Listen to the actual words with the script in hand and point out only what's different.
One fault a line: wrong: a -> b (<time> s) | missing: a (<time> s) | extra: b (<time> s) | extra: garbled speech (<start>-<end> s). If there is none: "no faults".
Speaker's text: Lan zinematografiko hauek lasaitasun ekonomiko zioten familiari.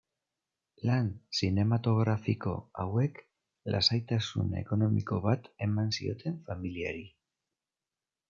extra: bat eman (5.3 s)